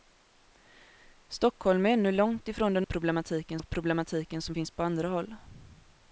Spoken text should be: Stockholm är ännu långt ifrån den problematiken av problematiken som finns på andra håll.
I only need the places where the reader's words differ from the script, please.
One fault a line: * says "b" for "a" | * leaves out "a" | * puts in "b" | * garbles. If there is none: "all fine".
all fine